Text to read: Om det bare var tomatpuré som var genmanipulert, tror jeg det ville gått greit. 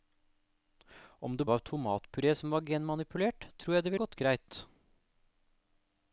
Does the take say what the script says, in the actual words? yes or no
no